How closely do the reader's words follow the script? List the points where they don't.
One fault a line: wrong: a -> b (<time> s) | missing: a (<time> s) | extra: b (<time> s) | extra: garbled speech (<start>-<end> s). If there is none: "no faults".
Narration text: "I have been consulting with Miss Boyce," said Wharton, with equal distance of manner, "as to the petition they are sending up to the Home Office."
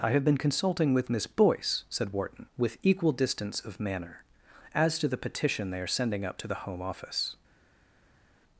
no faults